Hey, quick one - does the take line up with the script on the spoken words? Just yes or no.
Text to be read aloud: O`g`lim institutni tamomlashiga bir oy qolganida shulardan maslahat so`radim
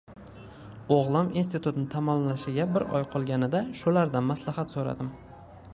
yes